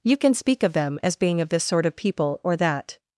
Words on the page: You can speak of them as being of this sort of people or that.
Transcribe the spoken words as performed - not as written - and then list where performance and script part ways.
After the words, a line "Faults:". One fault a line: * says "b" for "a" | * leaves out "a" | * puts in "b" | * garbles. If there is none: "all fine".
You can speak of them as being of this sort of people or that.
Faults:
all fine